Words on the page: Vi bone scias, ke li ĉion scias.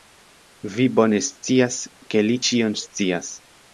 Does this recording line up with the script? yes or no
yes